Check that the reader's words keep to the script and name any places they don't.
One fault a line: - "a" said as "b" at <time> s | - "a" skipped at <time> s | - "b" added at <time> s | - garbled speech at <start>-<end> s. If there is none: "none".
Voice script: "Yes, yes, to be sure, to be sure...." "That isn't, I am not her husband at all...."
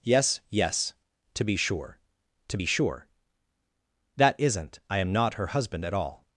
none